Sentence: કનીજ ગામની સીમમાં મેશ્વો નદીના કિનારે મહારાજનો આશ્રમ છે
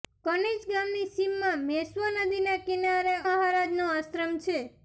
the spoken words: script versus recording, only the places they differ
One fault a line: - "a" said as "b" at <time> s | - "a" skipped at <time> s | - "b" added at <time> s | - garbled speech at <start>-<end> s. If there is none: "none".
none